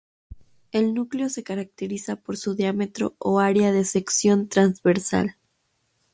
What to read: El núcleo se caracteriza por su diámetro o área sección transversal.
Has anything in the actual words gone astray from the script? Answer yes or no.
yes